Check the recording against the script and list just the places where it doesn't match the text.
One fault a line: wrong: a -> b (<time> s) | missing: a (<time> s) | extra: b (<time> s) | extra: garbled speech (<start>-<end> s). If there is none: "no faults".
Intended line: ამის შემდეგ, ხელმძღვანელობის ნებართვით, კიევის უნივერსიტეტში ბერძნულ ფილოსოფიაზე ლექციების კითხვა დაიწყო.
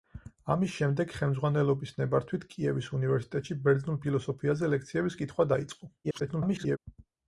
extra: garbled speech (6.0-6.8 s)